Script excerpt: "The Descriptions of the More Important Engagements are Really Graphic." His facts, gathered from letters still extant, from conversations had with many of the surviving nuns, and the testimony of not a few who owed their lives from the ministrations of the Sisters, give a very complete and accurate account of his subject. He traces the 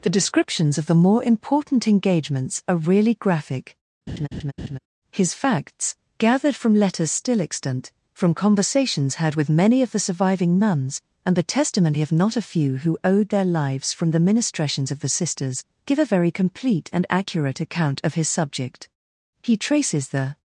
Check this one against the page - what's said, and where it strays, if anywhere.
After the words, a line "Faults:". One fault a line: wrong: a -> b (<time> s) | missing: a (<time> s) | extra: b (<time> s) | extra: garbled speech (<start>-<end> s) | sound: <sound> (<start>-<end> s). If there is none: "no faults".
"The Descriptions of the More Important Engagements are Really Graphic." His facts, gathered from letters still extant, from conversations had with many of the surviving nuns, and the testimony of not a few who owed their lives from the ministrations of the Sisters, give a very complete and accurate account of his subject. He traces the
Faults:
sound: laugh (4.1-4.8 s)